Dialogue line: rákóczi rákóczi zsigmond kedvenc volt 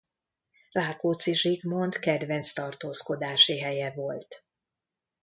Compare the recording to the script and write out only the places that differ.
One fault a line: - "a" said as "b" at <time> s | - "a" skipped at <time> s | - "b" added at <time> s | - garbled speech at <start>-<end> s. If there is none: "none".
- "rákóczi" skipped at 1.3 s
- "tartózkodási helye" added at 2.5 s